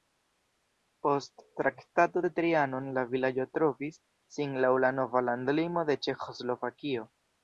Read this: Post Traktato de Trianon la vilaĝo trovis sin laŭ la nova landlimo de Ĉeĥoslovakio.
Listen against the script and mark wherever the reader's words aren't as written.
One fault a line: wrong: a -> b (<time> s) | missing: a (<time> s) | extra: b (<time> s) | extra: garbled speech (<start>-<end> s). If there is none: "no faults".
no faults